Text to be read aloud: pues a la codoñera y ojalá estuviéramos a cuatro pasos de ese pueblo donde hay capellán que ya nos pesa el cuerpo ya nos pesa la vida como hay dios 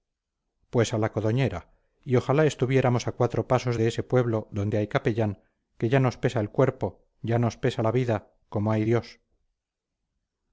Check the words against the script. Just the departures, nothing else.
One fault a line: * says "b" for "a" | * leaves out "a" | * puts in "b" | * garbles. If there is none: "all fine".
all fine